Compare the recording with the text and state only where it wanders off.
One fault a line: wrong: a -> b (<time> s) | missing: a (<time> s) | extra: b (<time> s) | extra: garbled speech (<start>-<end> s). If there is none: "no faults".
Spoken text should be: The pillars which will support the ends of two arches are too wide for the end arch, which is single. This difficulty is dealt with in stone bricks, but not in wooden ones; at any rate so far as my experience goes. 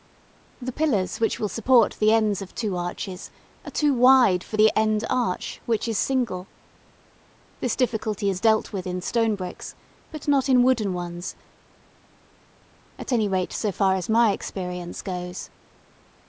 no faults